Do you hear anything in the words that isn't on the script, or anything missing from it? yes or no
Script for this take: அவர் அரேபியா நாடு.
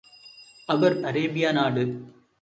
no